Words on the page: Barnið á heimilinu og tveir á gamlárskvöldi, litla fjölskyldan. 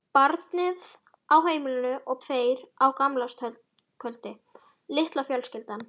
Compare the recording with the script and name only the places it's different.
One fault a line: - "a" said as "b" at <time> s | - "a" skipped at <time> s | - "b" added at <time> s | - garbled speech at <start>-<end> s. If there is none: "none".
none